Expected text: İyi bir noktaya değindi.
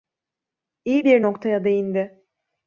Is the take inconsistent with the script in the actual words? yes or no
no